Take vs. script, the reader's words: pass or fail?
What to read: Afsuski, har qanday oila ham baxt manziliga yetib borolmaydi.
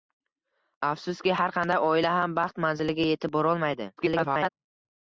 fail